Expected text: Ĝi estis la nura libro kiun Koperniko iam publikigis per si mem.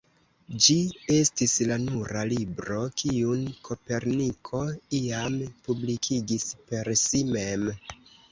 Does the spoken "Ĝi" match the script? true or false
true